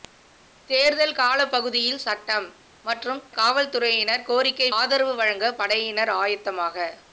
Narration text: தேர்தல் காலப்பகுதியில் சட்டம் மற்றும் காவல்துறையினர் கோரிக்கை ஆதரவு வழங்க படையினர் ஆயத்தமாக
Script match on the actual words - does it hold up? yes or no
yes